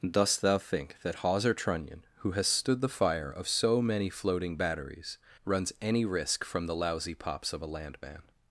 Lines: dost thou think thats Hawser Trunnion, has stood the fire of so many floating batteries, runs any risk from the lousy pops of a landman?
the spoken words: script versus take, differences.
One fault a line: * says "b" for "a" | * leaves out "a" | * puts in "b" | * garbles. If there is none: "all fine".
* says "that" for "thats"
* puts in "who"